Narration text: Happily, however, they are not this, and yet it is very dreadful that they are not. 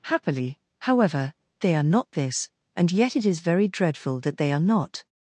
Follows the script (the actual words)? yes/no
yes